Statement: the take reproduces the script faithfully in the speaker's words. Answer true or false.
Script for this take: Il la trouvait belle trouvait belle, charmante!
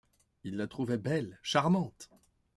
false